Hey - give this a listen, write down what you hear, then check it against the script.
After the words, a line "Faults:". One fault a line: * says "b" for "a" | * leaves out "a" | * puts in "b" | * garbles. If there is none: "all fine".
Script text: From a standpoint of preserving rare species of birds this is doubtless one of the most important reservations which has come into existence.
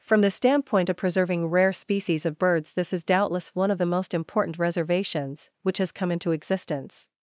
From the standpoint of preserving rare species of birds this is doubtless one of the most important reservations which has come into existence.
Faults:
* says "the" for "a"